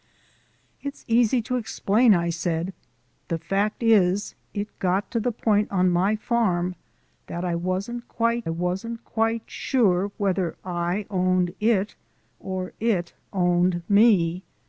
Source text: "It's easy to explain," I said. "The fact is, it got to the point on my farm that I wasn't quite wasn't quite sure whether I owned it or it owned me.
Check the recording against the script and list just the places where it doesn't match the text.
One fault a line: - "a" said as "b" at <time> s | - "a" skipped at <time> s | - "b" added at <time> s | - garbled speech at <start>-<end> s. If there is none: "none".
none